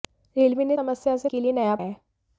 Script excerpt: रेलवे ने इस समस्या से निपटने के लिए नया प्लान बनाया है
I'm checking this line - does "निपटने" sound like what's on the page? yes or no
no